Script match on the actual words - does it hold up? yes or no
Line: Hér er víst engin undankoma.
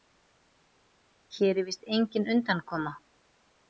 yes